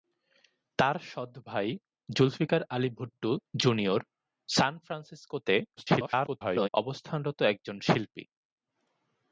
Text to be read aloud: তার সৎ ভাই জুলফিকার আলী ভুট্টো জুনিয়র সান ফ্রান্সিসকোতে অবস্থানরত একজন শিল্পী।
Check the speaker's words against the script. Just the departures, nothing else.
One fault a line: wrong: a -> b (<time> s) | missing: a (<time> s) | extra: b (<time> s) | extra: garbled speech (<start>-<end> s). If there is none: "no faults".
extra: garbled speech (5.8-6.7 s)